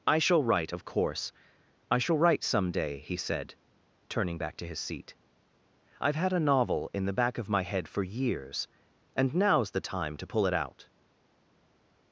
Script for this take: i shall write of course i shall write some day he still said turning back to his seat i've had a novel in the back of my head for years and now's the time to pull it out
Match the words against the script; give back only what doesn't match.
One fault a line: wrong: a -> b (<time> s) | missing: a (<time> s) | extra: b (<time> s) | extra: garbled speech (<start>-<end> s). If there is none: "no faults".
missing: still (3.2 s)